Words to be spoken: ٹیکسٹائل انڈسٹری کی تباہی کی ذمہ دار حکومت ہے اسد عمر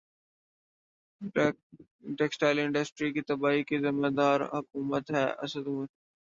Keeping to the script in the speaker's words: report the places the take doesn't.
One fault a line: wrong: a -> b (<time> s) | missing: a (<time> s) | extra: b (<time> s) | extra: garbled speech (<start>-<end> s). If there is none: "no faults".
no faults